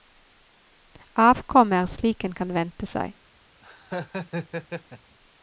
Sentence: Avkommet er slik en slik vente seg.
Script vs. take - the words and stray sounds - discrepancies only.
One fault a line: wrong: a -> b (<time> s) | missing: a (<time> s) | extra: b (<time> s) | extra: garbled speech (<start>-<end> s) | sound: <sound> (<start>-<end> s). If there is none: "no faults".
wrong: slik -> kan (2.4 s)
sound: laugh (3.6-5.2 s)